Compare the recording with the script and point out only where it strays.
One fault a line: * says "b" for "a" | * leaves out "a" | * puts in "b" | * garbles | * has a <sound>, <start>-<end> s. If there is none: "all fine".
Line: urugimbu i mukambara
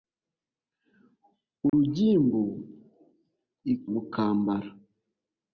* has a dropout, 1.7-1.7 s